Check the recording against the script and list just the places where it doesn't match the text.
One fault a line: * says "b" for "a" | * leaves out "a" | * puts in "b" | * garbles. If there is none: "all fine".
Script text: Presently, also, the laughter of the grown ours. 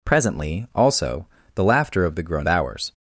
all fine